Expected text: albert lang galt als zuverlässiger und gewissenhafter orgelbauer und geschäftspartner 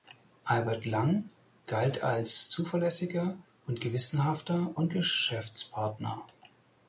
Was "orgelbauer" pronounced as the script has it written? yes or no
no